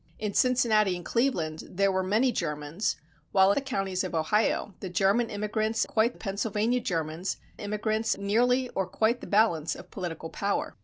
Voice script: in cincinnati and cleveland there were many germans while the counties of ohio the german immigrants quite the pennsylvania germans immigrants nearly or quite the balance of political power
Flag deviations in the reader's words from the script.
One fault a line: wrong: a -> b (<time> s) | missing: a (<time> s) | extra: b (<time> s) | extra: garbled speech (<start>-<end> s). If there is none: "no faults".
no faults